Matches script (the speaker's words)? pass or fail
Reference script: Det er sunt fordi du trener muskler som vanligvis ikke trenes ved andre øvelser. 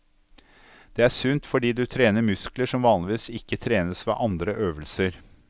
pass